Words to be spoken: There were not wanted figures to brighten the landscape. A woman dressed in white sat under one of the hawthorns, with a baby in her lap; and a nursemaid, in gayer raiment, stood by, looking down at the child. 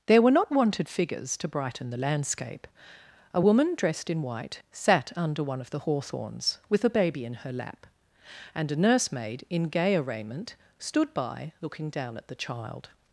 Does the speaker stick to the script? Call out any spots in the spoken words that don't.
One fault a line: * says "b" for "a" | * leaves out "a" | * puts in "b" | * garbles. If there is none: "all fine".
all fine